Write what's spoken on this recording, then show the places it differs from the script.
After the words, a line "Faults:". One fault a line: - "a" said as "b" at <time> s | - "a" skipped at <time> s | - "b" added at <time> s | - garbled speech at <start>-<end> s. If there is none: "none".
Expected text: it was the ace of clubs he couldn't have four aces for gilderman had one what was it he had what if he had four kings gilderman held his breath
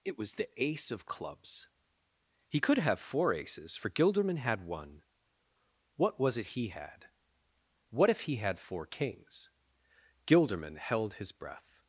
it was the ace of clubs he could have four aces for gilderman had one what was it he had what if he had four kings gilderman held his breath
Faults:
- "couldn't" said as "could" at 2.6 s